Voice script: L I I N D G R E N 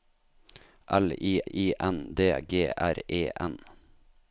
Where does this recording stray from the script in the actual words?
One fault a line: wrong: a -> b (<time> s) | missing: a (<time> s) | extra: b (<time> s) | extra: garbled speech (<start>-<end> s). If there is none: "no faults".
no faults